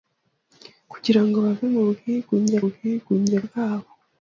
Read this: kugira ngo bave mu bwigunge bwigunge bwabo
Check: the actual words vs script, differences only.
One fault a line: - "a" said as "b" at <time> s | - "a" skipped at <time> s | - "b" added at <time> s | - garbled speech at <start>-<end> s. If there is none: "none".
none